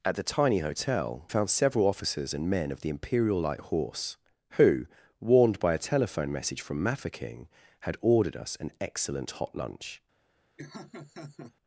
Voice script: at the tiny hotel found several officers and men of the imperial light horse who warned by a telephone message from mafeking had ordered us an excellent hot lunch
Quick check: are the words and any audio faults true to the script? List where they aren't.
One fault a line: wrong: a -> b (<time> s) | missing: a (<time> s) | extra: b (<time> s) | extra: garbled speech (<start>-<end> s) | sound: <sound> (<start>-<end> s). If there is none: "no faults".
sound: laugh (10.6-11.5 s)